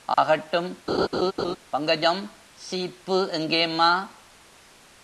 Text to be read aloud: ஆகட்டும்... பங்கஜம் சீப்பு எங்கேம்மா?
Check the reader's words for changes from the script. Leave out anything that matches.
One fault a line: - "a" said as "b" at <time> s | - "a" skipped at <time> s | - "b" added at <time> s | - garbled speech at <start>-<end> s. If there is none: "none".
none